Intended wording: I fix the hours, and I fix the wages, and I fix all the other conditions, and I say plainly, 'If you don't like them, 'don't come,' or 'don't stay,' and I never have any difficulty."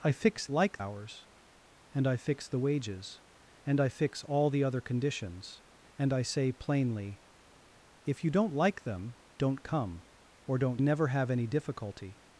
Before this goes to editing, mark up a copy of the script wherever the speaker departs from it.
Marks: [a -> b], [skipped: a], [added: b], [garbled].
I fix [the -> like] hours, and I fix the wages, and I fix all the other conditions, and I say plainly, 'If you don't like them, 'don't come,' or 'don't [skipped: stay,' and I] never have any difficulty."